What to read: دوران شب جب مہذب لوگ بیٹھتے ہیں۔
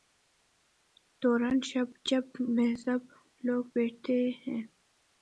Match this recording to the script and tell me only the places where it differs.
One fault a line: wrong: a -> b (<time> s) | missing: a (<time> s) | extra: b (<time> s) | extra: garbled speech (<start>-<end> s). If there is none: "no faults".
no faults